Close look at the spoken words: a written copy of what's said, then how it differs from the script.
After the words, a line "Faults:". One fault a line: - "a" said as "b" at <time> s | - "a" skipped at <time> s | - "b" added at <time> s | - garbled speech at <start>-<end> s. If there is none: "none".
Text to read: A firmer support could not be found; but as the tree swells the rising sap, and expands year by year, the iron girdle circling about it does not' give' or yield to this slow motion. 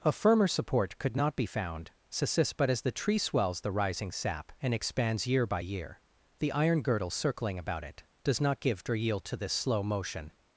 A firmer support could not be found; but as the tree swells the rising sap, and expands year by year, the iron girdle circling about it does not' give' or yield to this slow motion.
Faults:
none